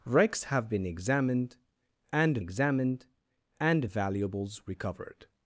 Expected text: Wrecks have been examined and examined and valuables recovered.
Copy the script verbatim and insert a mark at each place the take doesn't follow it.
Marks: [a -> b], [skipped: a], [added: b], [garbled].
Wrecks have been examined and examined and valuables recovered.